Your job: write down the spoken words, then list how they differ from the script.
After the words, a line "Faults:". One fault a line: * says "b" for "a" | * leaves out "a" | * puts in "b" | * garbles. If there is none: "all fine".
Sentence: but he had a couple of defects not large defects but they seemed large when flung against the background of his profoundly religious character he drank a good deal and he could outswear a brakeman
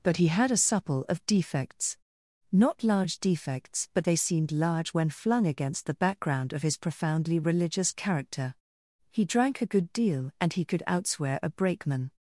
but he had a supple of defects not large defects but they seemed large when flung against the background of his profoundly religious character he drank a good deal and he could outswear a brakeman
Faults:
* says "supple" for "couple"